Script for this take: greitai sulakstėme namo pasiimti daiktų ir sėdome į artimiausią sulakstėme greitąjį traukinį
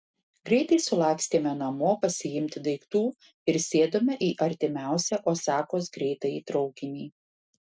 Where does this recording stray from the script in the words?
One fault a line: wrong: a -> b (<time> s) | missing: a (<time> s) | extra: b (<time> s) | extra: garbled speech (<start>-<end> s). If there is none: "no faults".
wrong: sulakstėme -> osakos (5.3 s)